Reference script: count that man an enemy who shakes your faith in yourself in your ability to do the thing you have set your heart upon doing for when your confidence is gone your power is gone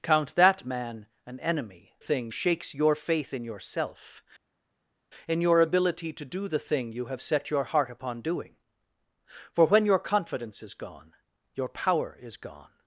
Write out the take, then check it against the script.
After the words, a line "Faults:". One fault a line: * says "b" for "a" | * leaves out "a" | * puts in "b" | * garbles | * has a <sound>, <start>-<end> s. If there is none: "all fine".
count that man an enemy thing shakes your faith in yourself in your ability to do the thing you have set your heart upon doing for when your confidence is gone your power is gone
Faults:
* says "thing" for "who"